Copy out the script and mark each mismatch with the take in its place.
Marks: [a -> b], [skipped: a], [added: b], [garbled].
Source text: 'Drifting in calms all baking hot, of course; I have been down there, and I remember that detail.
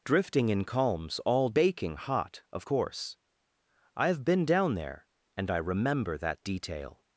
'Drifting in calms all baking hot, of course; I have been down there, and I remember that detail.